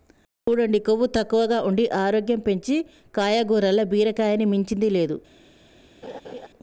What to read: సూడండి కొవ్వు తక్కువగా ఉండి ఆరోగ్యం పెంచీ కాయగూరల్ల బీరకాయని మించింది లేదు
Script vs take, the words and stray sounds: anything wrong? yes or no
yes